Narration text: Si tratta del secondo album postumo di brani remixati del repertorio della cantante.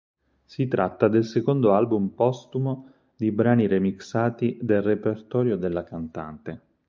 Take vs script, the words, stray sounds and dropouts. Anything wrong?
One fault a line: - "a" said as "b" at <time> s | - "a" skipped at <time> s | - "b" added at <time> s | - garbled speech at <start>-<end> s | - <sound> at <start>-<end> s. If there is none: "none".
none